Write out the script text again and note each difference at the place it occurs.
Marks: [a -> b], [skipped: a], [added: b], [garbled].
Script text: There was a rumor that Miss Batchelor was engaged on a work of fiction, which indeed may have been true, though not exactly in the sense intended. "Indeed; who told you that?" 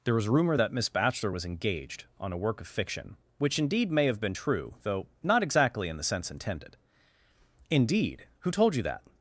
There was [skipped: a] rumor that Miss Batchelor was engaged on a work of fiction, which indeed may have been true, though not exactly in the sense intended. "Indeed; who told you that?"